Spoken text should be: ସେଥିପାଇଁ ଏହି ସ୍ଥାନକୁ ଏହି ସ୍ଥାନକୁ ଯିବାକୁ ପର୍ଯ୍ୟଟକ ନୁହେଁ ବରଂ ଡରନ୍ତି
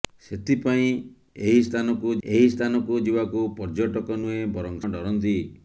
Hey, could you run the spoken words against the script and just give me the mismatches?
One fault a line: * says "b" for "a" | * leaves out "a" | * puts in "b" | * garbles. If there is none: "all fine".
all fine